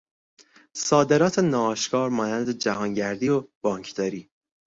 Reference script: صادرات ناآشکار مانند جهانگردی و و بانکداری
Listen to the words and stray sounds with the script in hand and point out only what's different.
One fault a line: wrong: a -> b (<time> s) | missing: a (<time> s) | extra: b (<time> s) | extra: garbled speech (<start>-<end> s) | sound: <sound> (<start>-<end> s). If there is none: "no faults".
missing: و (3.4 s)